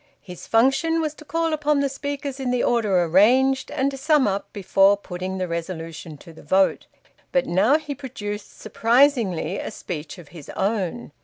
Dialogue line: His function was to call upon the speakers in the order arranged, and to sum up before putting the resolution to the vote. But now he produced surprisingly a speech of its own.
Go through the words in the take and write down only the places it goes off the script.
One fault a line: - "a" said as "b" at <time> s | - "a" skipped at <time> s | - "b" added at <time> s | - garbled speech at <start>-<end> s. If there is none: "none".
- "its" said as "his" at 10.3 s